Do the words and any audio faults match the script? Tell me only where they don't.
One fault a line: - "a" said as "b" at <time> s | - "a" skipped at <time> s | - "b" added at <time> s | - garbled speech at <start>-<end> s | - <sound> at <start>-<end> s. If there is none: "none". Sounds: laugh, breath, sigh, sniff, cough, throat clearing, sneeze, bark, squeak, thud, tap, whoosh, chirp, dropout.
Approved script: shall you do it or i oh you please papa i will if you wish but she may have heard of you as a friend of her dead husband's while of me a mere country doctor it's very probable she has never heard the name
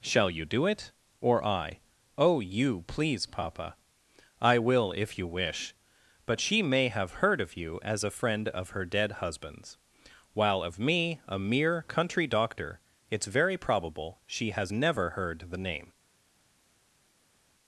none